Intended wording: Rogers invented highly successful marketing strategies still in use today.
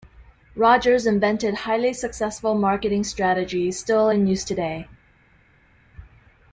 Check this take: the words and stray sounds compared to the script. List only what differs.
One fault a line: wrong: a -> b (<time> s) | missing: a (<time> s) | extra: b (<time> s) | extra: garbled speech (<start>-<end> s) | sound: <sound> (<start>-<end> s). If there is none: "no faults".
no faults